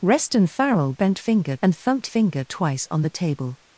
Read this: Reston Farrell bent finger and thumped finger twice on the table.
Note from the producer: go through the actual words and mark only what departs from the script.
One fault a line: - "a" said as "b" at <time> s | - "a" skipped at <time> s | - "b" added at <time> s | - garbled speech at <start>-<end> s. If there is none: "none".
none